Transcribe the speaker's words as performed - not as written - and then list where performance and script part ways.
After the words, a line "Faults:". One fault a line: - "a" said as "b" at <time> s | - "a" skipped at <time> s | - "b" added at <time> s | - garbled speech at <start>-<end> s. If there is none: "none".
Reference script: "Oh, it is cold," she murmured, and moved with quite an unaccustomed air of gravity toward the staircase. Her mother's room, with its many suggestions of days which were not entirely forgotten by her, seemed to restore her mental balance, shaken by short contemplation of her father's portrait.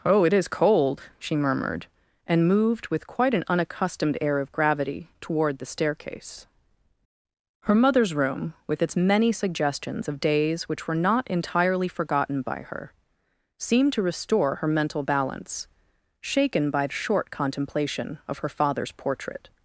"Oh, it is cold," she murmured, and moved with quite an unaccustomed air of gravity toward the staircase. Her mother's room, with its many suggestions of days which were not entirely forgotten by her, seemed to restore her mental balance, shaken by short contemplation of her father's portrait.
Faults:
none